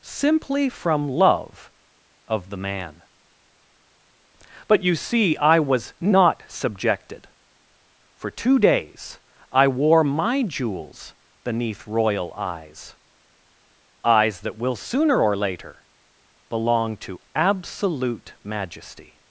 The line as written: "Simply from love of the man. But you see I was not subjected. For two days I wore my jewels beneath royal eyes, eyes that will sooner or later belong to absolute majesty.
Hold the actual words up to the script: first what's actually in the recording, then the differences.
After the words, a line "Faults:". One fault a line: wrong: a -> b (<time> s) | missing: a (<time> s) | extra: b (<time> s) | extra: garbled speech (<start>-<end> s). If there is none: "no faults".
"Simply from love of the man. But you see I was not subjected. For two days I wore my jewels beneath royal eyes, eyes that will sooner or later belong to absolute majesty.
Faults:
no faults